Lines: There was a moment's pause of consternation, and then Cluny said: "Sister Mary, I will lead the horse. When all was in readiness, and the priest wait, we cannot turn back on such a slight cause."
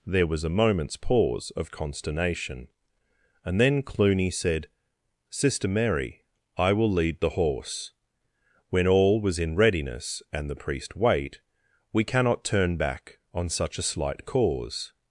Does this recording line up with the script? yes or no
yes